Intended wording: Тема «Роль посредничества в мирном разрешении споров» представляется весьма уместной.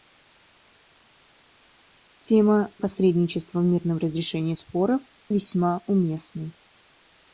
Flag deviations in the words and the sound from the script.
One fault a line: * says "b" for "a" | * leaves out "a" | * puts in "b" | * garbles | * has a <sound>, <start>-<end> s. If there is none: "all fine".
* leaves out "Роль"
* leaves out "представляется"